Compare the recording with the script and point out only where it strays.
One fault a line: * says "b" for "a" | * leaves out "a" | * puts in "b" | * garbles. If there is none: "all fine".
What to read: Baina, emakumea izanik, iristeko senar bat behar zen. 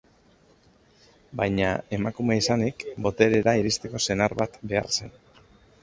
* puts in "boterera"